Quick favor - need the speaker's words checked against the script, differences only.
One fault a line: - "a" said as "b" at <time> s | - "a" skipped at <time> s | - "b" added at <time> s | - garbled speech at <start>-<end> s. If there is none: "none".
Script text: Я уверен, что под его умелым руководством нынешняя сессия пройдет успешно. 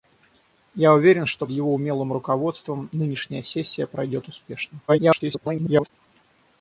- "под" skipped at 1.4 s
- garbled speech at 4.9-5.9 s